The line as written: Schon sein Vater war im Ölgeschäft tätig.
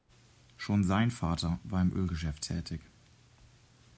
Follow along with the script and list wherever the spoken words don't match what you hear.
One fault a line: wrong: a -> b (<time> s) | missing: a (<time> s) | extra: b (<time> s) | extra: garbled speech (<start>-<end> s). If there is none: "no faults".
no faults